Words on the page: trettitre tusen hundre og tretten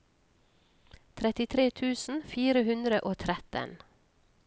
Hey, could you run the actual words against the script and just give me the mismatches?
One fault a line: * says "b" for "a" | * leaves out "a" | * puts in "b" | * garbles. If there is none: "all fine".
* puts in "fire"